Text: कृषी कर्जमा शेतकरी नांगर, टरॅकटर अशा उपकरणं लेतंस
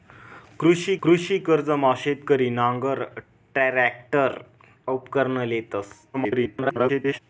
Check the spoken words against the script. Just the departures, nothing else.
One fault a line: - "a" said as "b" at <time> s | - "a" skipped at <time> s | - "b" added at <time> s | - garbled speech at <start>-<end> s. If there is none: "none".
- "कृषी" added at 1.0 s
- "अशा" skipped at 4.4 s
- garbled speech at 6.1-7.2 s